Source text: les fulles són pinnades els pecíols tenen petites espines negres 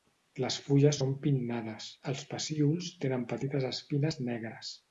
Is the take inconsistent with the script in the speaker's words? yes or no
no